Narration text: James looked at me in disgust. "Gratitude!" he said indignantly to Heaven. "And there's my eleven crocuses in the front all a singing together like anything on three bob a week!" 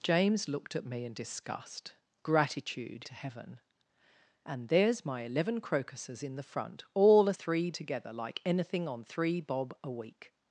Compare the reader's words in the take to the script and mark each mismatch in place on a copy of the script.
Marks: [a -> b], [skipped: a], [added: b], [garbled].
James looked at me in disgust. "Gratitude!" [skipped: he said indignantly] to Heaven. "And there's my eleven crocuses in the front all a [singing -> three] together like anything on three bob a week!"